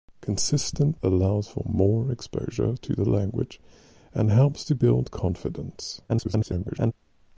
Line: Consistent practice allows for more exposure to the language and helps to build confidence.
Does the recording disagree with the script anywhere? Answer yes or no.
yes